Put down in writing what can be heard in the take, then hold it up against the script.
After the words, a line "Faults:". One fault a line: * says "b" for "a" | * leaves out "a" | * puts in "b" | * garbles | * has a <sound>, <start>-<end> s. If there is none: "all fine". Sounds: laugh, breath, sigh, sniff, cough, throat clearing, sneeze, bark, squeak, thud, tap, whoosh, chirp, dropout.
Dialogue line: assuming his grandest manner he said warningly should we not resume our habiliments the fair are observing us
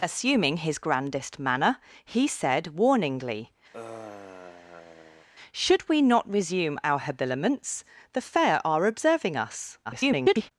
assuming his grandest manner he said warningly should we not resume our habiliments the fair are observing us [garbled]
Faults:
* has a sigh, 3.7-5.3 s
* garbles